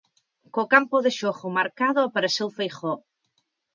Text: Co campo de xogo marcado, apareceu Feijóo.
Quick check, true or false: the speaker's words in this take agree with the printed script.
true